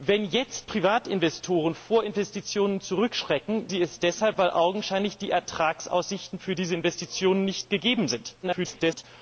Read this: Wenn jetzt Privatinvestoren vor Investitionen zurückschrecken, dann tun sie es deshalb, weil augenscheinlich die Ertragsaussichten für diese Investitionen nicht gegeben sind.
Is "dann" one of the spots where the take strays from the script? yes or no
yes